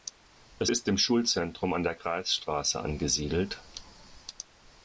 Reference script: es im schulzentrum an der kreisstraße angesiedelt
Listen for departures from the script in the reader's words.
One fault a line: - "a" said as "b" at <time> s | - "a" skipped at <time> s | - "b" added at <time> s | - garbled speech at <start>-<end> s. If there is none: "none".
- "ist" added at 0.7 s